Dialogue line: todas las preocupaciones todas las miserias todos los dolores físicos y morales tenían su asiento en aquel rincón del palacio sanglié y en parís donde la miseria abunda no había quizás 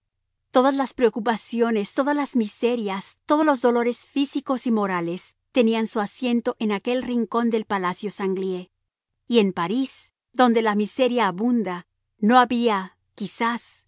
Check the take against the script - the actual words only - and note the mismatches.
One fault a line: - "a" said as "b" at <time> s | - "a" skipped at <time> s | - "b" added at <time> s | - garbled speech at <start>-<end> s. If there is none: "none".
none